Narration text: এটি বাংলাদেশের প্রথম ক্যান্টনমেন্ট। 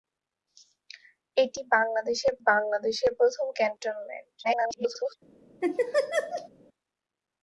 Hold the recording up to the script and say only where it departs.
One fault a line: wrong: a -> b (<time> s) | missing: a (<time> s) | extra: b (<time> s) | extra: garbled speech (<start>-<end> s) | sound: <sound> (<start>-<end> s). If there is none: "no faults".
extra: বাংলাদেশের (2.5 s)
extra: garbled speech (4.4-5.1 s)
sound: laugh (5.6-6.5 s)